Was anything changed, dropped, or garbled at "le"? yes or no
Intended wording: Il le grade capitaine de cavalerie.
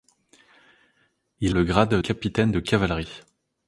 no